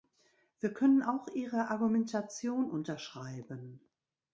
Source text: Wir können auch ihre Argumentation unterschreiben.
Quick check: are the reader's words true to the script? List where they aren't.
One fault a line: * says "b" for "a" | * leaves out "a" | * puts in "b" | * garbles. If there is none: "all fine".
all fine